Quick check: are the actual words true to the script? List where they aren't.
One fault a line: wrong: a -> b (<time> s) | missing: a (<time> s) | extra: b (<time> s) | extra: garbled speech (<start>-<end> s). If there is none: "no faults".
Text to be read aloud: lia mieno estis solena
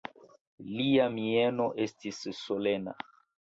no faults